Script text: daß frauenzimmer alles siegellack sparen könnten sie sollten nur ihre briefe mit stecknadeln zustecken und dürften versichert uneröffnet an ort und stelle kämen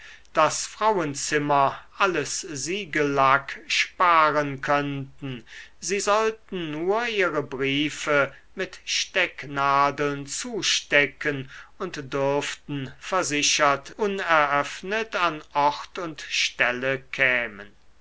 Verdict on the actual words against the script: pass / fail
pass